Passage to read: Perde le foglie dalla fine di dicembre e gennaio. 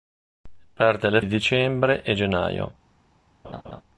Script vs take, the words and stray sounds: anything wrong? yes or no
yes